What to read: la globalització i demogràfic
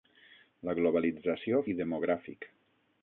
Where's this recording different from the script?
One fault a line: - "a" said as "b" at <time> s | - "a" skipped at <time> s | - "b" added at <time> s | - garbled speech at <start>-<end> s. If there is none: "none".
none